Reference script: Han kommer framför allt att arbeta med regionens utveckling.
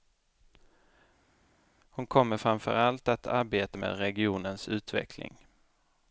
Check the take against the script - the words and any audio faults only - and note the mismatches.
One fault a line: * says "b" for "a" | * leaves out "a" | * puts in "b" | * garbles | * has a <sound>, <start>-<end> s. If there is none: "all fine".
* says "Hon" for "Han"